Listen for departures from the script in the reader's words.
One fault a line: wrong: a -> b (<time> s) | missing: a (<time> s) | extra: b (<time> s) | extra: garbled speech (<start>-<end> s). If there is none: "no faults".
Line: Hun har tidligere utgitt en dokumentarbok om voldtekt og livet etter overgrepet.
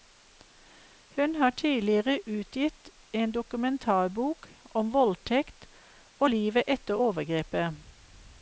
no faults